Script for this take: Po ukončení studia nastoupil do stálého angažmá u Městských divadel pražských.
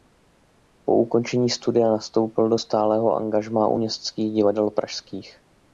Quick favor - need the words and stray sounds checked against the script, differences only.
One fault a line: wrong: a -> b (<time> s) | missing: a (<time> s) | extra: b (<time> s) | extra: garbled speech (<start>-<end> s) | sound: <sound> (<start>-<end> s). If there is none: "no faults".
no faults